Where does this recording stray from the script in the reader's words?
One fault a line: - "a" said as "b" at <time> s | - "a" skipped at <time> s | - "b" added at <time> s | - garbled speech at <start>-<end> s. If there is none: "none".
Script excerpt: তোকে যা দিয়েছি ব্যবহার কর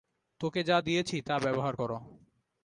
- "তা" added at 1.2 s